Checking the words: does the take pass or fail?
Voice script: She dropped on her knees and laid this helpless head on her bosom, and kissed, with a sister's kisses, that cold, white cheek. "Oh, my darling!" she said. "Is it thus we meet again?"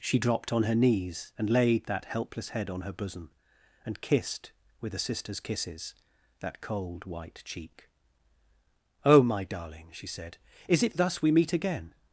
fail